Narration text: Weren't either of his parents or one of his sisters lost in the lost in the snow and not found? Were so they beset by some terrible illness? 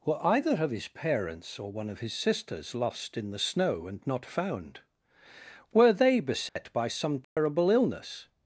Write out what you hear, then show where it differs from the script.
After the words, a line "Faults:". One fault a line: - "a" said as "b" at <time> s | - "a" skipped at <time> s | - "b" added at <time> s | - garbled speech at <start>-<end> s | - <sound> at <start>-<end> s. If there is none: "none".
Were either of his parents or one of his sisters lost in the snow and not found? Were they beset by some terrible illness?
Faults:
- "Weren't" said as "Were" at 0.0 s
- "lost in the" skipped at 3.4 s
- "so" skipped at 5.9 s
- dropout at 6.5-6.6 s
- dropout at 7.2-7.4 s